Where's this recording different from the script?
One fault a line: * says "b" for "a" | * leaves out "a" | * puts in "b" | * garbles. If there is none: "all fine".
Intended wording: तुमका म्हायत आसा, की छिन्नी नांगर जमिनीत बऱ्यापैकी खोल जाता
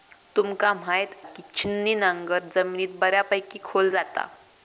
* leaves out "आसा"